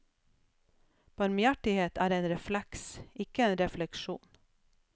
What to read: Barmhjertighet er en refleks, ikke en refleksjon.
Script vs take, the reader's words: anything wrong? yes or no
no